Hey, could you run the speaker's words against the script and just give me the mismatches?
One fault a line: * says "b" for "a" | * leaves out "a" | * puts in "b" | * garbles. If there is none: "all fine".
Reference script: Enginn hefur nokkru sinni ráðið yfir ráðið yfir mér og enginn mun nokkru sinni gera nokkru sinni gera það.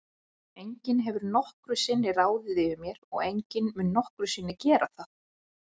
* leaves out "ráðið yfir"
* leaves out "nokkru sinni gera"